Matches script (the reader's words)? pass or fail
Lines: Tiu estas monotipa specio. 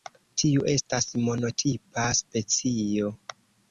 pass